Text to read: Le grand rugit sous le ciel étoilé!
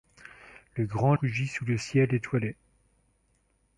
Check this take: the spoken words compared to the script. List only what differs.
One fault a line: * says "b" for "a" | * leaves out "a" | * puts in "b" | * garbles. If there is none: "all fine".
all fine